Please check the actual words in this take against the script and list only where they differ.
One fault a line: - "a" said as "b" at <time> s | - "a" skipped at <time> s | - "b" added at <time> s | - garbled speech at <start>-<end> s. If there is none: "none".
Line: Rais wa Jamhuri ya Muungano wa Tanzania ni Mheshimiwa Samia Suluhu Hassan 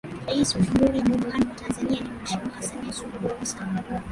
- "ya" skipped at 1.0 s